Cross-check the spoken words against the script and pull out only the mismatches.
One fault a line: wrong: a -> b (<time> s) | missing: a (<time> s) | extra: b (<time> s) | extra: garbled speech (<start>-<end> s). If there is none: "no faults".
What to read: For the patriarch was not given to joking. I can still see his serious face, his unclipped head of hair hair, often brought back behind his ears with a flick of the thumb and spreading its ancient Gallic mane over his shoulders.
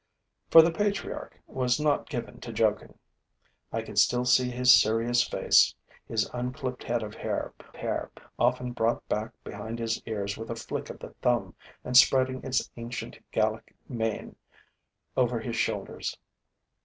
no faults